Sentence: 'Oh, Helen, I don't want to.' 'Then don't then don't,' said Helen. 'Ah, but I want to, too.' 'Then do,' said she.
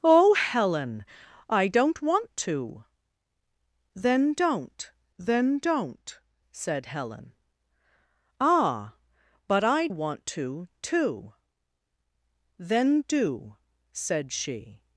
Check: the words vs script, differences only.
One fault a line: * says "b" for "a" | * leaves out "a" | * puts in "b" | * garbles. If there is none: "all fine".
all fine